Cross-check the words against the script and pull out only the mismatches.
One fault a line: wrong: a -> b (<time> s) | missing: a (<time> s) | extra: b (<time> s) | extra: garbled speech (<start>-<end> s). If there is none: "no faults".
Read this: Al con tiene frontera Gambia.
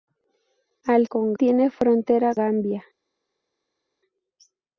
no faults